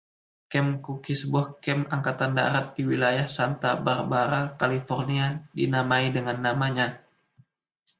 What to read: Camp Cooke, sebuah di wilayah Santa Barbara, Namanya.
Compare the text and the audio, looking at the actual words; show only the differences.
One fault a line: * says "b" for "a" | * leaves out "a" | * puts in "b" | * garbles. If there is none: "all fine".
* puts in "kamp Angkatan Darat"
* puts in "California dinamai dengan"